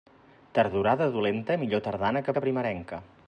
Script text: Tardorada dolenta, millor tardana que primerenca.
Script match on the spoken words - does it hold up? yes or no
no